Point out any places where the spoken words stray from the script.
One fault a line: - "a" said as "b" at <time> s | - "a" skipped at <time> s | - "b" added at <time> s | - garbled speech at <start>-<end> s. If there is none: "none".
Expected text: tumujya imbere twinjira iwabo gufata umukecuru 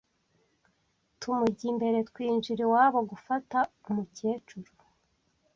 none